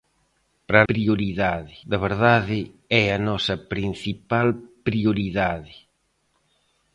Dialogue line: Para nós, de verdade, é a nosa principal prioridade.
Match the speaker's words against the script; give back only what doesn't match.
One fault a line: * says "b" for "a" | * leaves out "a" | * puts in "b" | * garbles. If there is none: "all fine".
* says "prioridade" for "nós"